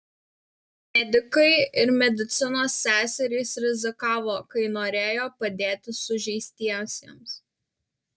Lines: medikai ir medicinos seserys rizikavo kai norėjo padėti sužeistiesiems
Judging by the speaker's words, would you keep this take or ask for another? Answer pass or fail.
pass